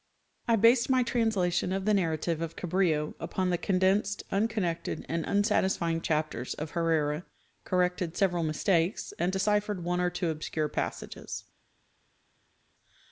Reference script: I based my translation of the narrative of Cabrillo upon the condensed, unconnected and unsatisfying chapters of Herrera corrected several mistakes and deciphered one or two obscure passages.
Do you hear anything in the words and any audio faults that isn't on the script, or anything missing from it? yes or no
no